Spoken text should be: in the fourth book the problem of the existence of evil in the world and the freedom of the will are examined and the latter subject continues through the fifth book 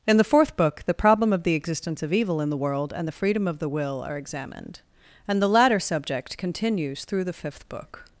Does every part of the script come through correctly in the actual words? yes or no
yes